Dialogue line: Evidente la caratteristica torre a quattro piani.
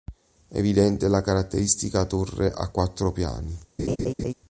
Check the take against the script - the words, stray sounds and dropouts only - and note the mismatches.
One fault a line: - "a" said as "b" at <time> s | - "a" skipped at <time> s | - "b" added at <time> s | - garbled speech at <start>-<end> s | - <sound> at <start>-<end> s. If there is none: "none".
- laugh at 3.8-4.3 s